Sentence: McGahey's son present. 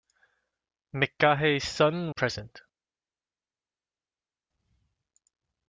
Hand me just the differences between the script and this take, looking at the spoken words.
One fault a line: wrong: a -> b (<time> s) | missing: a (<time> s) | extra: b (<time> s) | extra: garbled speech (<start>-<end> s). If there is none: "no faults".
no faults